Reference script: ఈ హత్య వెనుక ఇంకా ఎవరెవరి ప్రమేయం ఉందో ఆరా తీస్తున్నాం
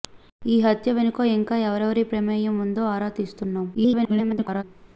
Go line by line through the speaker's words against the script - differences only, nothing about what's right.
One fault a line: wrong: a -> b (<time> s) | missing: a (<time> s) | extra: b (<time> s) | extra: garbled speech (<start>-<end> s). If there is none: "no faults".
extra: garbled speech (3.7-4.6 s)